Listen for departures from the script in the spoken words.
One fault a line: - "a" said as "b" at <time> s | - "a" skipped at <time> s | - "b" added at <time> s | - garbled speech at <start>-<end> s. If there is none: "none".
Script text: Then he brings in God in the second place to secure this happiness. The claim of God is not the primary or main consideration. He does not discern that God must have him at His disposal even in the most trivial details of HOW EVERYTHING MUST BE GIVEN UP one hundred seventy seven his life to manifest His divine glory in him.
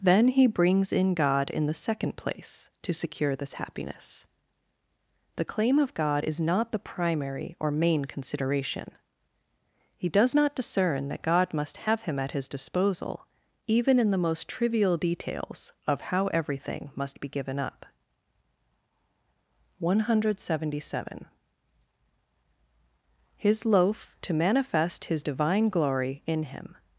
- "life" said as "loaf" at 23.6 s